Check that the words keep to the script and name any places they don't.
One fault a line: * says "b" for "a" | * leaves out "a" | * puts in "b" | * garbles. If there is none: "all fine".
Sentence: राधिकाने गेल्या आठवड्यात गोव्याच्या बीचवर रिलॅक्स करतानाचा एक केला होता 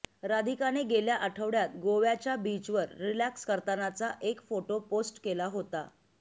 * puts in "फोटो पोस्ट"